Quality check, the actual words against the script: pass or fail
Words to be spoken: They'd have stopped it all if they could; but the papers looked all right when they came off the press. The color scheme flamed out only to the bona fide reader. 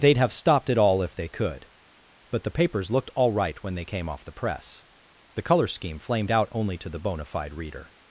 pass